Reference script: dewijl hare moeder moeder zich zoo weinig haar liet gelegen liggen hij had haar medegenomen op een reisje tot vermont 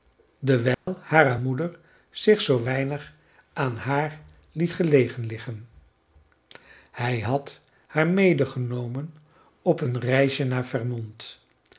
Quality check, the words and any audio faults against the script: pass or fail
fail